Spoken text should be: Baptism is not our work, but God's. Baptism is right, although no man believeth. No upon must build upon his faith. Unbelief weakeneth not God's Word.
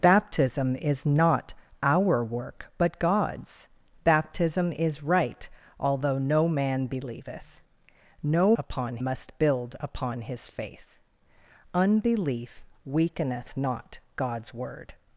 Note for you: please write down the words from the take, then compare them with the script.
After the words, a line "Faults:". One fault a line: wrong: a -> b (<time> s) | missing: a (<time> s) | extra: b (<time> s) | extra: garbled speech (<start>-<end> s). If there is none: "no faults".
Baptism is not our work, but God's. Baptism is right, although no man believeth. No upon must build upon his faith. Unbelief weakeneth not God's Word.
Faults:
no faults